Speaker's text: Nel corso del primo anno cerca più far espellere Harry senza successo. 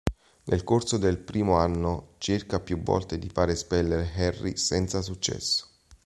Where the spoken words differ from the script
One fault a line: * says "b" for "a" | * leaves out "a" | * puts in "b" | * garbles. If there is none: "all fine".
* puts in "volte di"